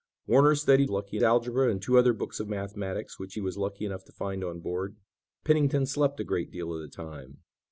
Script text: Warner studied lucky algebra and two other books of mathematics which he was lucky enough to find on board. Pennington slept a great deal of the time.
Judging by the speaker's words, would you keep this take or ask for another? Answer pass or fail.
pass